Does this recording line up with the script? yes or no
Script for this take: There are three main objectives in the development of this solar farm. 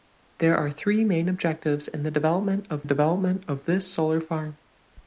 no